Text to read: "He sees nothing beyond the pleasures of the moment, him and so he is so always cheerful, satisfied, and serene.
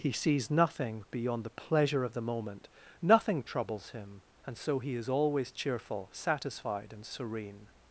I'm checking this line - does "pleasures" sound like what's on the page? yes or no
no